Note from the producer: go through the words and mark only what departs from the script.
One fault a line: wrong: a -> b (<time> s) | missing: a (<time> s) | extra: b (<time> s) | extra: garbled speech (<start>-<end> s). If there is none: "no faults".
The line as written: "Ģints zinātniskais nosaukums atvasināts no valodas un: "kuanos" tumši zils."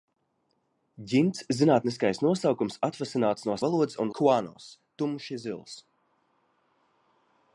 no faults